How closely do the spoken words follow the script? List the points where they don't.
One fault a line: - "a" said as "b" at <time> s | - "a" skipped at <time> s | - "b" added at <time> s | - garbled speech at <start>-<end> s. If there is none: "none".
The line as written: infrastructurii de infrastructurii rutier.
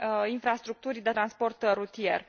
- "infrastructurii" said as "transport" at 1.1 s